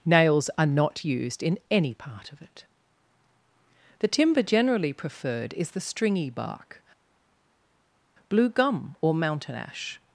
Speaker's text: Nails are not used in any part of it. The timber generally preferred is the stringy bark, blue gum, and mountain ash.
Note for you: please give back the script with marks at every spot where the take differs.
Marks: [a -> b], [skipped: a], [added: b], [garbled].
Nails are not used in any part of it. The timber generally preferred is the stringy bark, blue gum, [and -> or] mountain ash.